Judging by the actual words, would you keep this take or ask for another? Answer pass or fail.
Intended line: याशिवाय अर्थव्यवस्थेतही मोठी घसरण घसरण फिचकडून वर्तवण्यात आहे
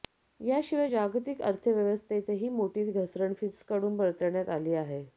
fail